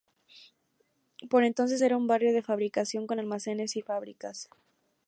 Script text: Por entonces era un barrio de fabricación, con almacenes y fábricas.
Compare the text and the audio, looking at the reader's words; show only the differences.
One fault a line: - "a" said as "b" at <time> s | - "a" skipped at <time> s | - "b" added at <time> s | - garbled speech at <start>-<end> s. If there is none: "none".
none